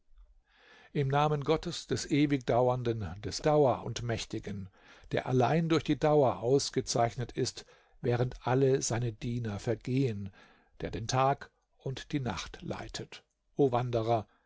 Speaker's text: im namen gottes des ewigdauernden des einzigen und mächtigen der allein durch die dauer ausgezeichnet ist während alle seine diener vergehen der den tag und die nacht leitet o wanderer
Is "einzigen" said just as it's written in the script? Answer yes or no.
no